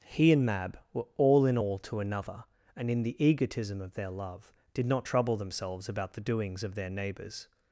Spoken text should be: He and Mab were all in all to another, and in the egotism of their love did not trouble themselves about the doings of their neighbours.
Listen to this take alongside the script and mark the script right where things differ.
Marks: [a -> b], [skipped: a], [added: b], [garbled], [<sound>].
He and Mab were all in all to another, and in the egotism of their love did not trouble themselves about the doings of their neighbours.